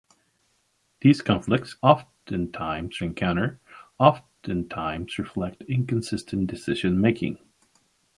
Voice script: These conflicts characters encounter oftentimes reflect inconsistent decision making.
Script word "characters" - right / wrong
wrong